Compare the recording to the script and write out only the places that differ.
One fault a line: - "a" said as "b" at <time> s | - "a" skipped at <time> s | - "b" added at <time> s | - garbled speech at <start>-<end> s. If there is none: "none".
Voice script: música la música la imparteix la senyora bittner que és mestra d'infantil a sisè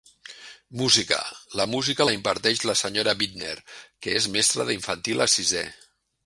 none